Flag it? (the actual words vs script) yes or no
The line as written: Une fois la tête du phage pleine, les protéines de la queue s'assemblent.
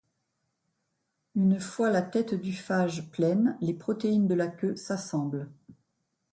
no